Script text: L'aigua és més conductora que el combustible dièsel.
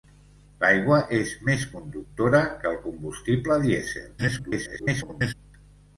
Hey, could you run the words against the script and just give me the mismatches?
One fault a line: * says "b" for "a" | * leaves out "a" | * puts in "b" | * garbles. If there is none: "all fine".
* garbles